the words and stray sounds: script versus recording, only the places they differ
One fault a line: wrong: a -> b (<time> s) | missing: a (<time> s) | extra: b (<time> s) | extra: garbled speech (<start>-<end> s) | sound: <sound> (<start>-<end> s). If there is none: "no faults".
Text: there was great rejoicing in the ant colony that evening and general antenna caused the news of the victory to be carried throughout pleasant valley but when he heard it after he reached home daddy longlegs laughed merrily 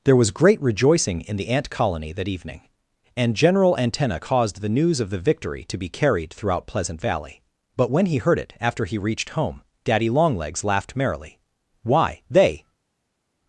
extra: why they (11.8 s)